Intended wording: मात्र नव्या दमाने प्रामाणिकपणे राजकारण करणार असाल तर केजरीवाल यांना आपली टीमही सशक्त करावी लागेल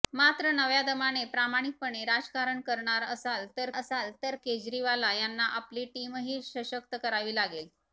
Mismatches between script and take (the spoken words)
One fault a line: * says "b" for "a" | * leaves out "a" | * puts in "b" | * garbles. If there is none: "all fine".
* puts in "असाल तर"